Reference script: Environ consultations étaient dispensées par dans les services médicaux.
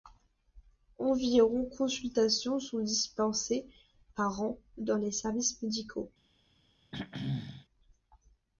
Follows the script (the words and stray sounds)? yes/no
no